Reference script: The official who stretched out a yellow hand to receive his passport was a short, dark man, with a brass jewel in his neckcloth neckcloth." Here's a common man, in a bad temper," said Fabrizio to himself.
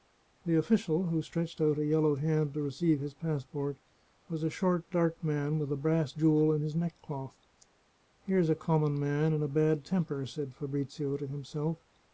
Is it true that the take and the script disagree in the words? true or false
true